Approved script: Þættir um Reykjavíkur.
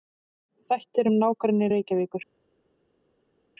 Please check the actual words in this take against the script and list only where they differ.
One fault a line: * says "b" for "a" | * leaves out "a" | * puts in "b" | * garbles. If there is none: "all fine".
* puts in "nágrenni"